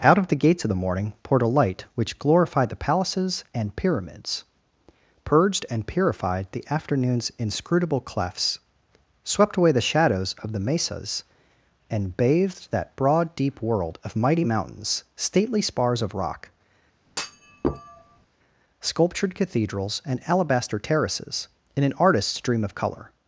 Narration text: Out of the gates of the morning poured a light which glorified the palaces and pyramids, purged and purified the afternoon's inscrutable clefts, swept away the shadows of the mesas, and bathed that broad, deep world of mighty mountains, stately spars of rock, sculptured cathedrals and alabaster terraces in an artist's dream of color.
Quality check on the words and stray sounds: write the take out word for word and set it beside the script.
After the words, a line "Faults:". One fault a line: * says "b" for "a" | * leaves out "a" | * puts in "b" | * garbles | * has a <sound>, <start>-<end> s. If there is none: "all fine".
Out of the gates of the morning poured a light which glorified the palaces and pyramids, purged and purified the afternoon's inscrutable clefts, swept away the shadows of the mesas, and bathed that broad, deep world of mighty mountains, stately spars of rock, sculptured cathedrals and alabaster terraces in an artist's dream of color.
Faults:
* has a thud, 17.1-18.3 s